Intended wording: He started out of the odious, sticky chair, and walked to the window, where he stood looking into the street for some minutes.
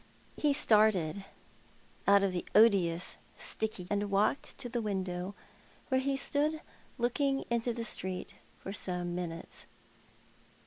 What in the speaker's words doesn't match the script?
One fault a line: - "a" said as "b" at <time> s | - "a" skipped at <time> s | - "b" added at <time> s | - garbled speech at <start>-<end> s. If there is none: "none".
- "chair" skipped at 3.9 s